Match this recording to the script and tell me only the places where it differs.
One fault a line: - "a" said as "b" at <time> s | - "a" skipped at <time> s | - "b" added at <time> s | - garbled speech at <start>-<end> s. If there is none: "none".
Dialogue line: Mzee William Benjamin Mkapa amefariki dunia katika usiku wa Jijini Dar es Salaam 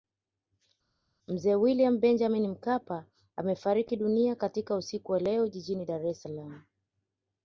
- "leo" added at 5.2 s